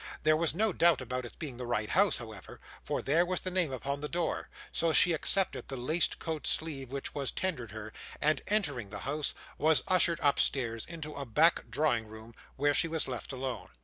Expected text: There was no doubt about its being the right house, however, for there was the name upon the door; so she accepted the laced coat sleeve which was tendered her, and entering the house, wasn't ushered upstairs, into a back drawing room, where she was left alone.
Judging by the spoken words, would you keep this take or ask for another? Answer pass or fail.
fail